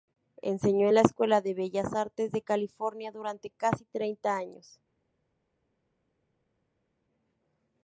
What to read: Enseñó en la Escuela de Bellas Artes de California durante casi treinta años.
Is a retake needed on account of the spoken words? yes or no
no